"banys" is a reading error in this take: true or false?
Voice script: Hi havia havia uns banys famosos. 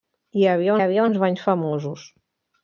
false